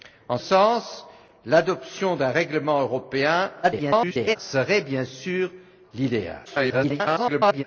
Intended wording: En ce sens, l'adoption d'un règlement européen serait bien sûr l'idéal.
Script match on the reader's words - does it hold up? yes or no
no